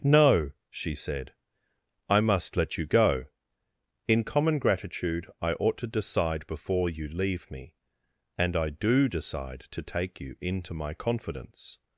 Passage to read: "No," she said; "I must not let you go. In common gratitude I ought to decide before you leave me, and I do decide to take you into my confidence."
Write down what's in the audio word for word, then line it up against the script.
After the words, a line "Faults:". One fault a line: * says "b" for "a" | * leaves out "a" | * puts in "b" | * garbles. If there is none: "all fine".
"No," she said; "I must let you go. In common gratitude I ought to decide before you leave me, and I do decide to take you into my confidence."
Faults:
* leaves out "not"